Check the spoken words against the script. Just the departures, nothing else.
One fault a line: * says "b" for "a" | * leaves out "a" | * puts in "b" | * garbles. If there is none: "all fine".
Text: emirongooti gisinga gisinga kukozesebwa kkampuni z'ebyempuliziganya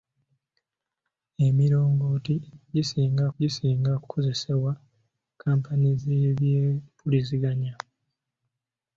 all fine